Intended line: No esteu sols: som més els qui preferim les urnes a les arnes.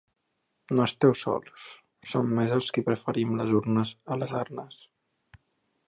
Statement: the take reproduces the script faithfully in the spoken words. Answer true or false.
true